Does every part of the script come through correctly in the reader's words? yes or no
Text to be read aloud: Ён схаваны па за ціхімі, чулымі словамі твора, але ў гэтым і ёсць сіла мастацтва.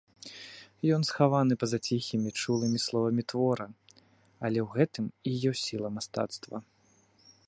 yes